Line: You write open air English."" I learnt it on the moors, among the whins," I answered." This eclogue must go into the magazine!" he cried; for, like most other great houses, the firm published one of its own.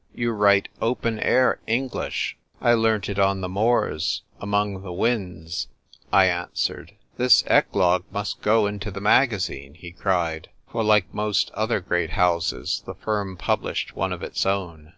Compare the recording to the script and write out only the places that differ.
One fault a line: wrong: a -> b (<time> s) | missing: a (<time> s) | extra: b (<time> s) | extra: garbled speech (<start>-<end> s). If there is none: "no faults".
no faults